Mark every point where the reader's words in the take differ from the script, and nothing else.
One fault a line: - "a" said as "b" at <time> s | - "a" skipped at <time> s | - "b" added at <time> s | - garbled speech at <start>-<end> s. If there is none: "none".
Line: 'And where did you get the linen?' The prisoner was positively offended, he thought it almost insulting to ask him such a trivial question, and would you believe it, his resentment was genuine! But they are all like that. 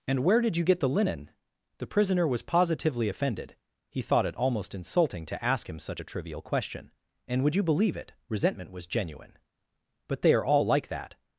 - "his" skipped at 8.1 s